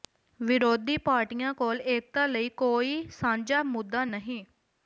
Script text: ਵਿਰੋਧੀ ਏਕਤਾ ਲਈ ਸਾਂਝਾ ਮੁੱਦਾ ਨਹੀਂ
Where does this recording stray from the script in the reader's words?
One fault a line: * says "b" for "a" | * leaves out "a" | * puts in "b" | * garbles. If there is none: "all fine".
* puts in "ਪਾਰਟੀਆਂ ਕੋਲ"
* puts in "ਕੋਈ"